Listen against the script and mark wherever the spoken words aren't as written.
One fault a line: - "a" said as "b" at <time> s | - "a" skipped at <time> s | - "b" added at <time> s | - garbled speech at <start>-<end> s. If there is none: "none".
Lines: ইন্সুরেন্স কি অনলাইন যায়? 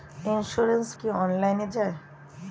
none